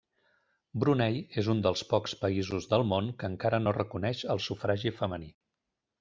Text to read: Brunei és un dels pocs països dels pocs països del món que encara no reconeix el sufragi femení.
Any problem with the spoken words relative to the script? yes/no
yes